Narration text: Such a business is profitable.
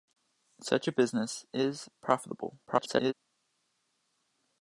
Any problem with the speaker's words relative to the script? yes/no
yes